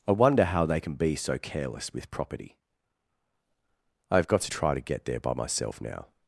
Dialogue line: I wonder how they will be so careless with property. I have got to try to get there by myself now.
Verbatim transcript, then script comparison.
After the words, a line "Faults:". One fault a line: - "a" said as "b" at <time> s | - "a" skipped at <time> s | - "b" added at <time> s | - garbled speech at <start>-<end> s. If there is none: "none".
I wonder how they can be so careless with property. I have got to try to get there by myself now.
Faults:
- "will" said as "can" at 0.8 s